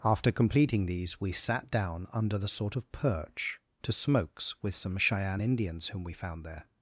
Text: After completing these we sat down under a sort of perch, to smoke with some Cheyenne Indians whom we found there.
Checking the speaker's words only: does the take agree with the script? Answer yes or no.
no